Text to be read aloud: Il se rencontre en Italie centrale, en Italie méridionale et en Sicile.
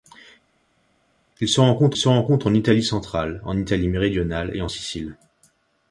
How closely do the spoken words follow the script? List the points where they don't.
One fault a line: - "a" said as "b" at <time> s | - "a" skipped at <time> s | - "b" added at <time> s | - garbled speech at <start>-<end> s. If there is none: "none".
- "se rencontre" added at 2.0 s